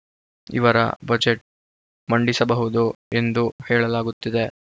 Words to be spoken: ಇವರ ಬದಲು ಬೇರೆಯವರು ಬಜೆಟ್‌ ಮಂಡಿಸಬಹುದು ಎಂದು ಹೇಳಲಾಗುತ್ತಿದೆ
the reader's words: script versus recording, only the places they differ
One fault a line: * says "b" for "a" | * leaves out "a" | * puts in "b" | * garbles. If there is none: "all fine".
* leaves out "ಬದಲು ಬೇರೆಯವರು"